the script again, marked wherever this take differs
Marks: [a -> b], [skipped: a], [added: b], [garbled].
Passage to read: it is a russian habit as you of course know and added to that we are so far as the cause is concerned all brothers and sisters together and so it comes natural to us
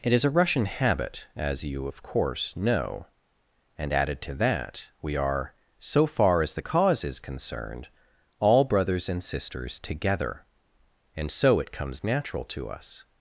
it is a russian habit as you of course know and added to that we are so far as the cause is concerned all brothers and sisters together and so it comes natural to us